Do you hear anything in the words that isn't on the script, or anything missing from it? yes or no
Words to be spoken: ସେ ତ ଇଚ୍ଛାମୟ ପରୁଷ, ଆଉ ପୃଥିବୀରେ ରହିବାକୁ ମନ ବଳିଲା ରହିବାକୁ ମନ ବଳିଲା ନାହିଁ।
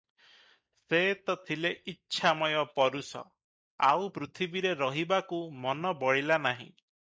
yes